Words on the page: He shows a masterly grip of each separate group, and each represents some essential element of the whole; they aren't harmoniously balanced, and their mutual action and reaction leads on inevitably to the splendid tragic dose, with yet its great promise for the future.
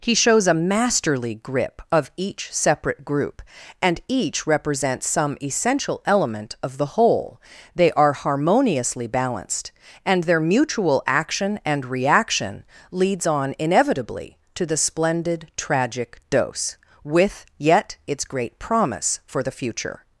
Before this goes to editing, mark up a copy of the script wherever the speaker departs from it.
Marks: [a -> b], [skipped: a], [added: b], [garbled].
He shows a masterly grip of each separate group, and each represents some essential element of the whole; they [aren't -> are] harmoniously balanced, and their mutual action and reaction leads on inevitably to the splendid tragic dose, with yet its great promise for the future.